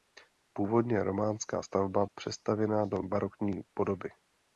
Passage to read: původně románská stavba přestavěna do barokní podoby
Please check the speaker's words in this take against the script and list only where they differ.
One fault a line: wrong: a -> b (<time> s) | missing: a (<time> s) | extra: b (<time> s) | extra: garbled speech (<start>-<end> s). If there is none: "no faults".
no faults